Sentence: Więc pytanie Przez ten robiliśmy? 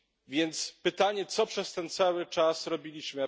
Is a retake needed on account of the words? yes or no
yes